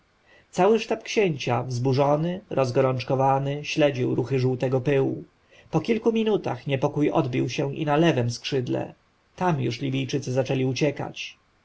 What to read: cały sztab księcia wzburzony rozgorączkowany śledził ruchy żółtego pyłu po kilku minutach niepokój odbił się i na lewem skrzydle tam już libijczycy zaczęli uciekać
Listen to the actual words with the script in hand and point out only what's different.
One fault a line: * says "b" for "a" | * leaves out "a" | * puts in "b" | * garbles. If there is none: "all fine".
all fine